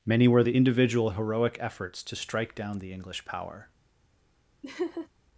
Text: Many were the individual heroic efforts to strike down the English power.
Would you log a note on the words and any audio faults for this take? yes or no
yes